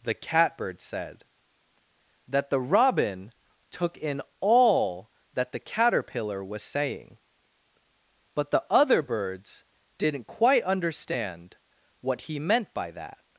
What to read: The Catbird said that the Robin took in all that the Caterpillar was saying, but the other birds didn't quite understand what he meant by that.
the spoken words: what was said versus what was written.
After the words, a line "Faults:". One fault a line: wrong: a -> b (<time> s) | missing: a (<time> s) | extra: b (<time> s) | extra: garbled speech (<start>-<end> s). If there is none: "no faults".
The Catbird said that the Robin took in all that the Caterpillar was saying, but the other birds didn't quite understand what he meant by that.
Faults:
no faults